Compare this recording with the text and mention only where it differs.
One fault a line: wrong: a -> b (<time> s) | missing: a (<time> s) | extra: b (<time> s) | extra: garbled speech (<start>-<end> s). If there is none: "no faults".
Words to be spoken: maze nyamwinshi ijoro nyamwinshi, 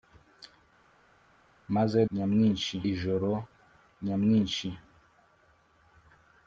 no faults